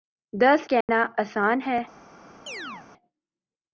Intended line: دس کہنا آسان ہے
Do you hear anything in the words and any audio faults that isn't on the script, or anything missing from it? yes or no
yes